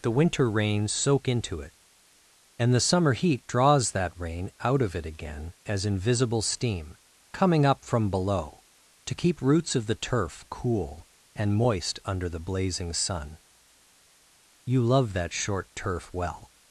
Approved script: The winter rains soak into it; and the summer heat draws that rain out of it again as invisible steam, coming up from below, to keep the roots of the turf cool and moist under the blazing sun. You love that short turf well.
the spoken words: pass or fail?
fail